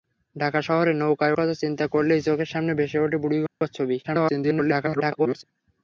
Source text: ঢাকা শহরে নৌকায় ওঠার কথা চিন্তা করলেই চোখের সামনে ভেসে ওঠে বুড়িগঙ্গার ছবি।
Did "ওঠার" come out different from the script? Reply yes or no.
yes